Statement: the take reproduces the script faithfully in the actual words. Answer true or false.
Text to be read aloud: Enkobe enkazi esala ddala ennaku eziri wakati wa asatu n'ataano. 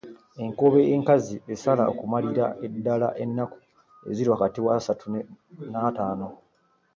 false